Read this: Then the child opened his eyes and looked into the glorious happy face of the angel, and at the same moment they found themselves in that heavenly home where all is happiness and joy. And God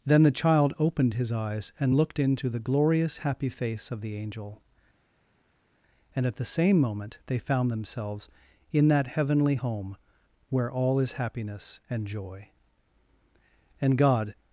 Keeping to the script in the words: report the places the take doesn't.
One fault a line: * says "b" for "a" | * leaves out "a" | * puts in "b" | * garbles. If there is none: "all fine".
all fine